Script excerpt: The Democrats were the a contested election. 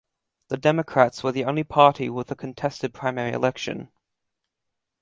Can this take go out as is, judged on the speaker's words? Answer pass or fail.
fail